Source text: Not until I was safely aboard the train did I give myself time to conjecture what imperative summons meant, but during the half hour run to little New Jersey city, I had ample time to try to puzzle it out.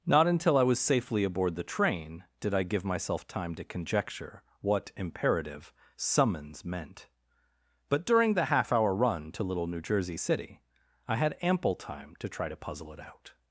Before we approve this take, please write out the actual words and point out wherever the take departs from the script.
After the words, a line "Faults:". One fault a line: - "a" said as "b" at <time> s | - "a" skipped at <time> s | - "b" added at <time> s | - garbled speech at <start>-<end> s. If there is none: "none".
Not until I was safely aboard the train did I give myself time to conjecture what imperative summons meant, but during the half hour run to little New Jersey city, I had ample time to try to puzzle it out.
Faults:
none